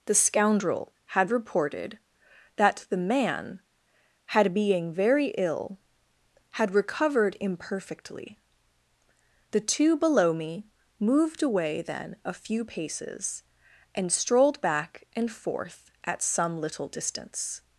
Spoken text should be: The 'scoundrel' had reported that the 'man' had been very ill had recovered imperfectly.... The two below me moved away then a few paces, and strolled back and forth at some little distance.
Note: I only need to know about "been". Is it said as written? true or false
false